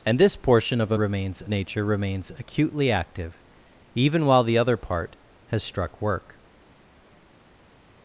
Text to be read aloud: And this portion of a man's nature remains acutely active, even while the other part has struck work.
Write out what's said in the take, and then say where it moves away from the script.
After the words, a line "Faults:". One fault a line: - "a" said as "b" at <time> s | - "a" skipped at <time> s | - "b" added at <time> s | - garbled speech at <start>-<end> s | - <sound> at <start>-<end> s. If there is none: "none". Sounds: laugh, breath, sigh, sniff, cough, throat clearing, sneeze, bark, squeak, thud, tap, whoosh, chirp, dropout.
And this portion of a remains nature remains acutely active, even while the other part has struck work.
Faults:
- "man's" said as "remains" at 0.9 s